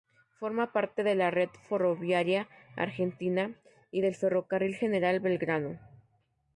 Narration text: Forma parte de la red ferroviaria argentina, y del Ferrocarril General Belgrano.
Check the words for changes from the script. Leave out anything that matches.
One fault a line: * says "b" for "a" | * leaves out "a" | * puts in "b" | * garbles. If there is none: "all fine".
all fine